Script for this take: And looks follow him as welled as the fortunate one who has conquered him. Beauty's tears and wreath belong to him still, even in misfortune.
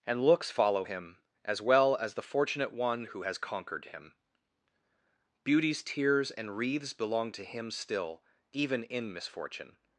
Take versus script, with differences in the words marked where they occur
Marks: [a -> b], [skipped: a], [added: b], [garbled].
And looks follow him as [welled -> well] as the fortunate one who has conquered him. Beauty's tears and [wreath -> wreaths] belong to him still, even in misfortune.